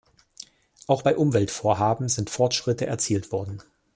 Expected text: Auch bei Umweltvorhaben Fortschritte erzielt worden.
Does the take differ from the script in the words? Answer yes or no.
yes